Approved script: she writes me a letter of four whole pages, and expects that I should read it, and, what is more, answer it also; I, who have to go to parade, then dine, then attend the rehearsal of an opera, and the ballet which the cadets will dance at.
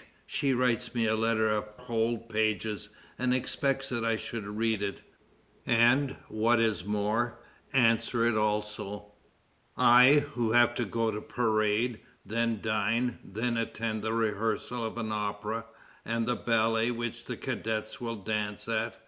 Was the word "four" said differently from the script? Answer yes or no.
yes